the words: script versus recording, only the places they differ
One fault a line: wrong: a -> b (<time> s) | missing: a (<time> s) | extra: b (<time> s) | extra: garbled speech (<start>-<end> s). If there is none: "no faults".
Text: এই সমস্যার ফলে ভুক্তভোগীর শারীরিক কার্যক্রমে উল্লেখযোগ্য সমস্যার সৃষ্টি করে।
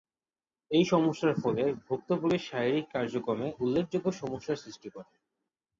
no faults